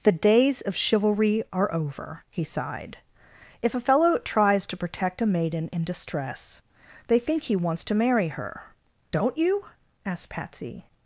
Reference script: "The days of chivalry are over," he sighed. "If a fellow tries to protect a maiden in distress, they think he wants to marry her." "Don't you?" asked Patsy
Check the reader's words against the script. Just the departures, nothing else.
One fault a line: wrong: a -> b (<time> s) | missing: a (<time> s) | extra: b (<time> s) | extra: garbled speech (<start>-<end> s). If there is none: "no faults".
no faults